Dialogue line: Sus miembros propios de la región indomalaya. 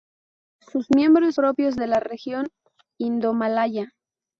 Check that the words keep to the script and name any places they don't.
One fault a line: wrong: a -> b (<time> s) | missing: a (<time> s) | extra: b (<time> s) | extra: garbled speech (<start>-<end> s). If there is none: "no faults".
no faults